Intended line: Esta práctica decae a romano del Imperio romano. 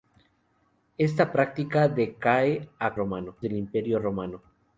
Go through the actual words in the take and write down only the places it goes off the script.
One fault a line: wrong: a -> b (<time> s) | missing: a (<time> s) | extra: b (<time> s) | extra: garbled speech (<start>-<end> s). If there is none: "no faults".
no faults